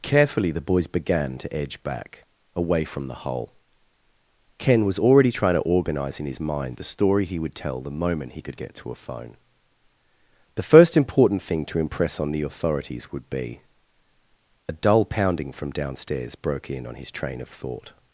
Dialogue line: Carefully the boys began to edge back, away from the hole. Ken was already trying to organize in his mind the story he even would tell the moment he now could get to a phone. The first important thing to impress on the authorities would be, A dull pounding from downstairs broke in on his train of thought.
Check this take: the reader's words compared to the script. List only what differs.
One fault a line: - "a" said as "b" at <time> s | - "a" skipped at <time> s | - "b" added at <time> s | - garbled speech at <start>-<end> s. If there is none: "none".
- "even" skipped at 7.4 s
- "now" skipped at 8.4 s